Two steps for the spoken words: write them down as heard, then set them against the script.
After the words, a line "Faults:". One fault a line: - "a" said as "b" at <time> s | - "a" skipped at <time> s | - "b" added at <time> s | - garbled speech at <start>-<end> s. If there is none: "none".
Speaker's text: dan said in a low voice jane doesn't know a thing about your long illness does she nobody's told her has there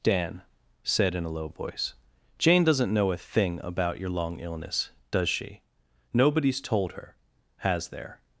dan said in a low voice jane doesn't know a thing about your long illness does she nobody's told her has there
Faults:
none